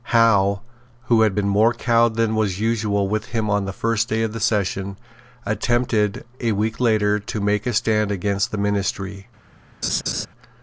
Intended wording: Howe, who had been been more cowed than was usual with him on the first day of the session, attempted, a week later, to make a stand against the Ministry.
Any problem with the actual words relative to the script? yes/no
yes